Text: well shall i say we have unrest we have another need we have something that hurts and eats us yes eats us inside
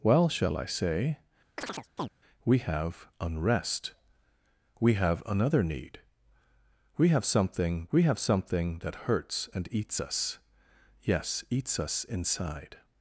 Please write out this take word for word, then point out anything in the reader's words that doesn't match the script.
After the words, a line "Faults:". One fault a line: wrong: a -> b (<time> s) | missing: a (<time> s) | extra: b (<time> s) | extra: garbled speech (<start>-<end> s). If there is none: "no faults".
well shall i say we have unrest we have another need we have something we have something that hurts and eats us yes eats us inside
Faults:
extra: we have something (7.9 s)